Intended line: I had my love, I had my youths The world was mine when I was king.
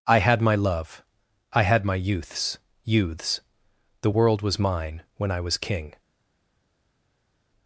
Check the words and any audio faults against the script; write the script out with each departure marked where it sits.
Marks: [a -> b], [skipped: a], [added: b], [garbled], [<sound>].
I had my love, I had my youths [added: youths] The world was mine when I was king.